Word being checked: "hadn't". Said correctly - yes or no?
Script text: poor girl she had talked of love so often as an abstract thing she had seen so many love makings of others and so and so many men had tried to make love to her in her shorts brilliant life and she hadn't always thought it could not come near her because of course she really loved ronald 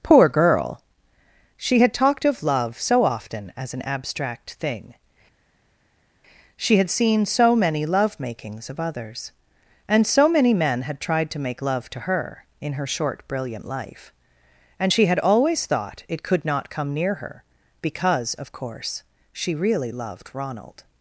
no